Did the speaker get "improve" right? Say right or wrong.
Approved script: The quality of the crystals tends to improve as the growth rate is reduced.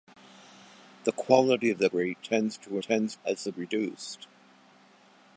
wrong